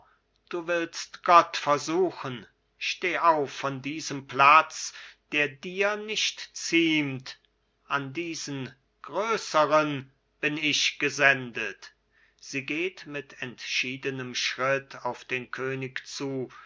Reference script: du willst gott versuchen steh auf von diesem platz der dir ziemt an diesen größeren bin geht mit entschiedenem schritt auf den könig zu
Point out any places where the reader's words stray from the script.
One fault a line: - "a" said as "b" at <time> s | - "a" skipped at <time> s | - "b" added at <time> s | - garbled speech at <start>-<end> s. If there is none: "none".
- "nicht" added at 6.0 s
- "ich gesendet sie" added at 10.6 s